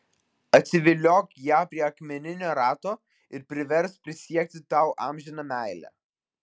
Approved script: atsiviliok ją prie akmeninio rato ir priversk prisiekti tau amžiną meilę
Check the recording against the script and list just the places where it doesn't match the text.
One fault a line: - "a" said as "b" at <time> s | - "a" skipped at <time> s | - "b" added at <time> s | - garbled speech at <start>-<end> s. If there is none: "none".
none